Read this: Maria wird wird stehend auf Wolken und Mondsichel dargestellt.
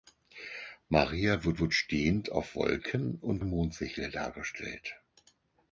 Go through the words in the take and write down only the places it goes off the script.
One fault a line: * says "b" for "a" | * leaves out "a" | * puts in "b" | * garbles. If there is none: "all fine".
all fine